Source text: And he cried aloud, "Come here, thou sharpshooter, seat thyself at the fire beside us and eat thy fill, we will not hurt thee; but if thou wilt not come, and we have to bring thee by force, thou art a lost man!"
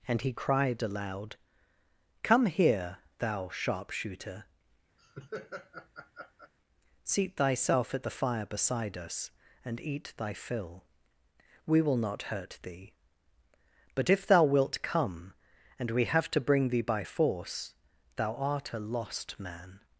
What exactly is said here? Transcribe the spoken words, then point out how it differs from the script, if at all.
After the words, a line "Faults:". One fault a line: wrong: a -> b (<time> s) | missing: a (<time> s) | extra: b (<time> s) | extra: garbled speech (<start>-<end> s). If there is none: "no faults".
And he cried aloud, "Come here, thou sharpshooter, seat thyself at the fire beside us and eat thy fill, we will not hurt thee; but if thou wilt come, and we have to bring thee by force, thou art a lost man!"
Faults:
missing: not (14.8 s)